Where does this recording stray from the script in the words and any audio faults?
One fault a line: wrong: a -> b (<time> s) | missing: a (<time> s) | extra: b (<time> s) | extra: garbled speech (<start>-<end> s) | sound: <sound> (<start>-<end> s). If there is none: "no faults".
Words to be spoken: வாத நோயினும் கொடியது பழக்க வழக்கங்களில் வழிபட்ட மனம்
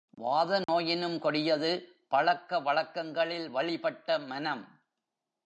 sound: dropout (0.6-0.7 s)